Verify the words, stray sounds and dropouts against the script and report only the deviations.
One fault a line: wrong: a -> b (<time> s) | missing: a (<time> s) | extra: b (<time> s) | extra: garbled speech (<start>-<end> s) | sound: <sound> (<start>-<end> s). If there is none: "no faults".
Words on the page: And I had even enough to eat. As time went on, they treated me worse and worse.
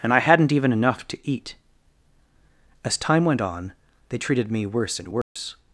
wrong: had -> hadn't (0.2 s)
sound: dropout (5.2-5.4 s)